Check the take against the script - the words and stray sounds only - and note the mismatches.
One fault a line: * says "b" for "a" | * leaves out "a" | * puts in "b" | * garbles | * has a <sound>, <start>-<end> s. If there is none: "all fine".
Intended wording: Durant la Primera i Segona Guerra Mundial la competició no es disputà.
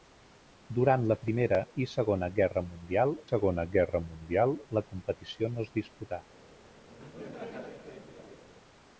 * puts in "Segona Guerra Mundial"
* has a laugh, 6.9-8.4 s